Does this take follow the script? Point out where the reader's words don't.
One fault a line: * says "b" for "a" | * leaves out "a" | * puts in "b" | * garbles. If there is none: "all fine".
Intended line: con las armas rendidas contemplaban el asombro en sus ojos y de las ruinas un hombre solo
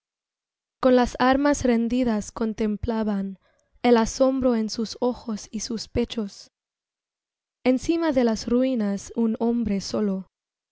* puts in "sus pechos encima"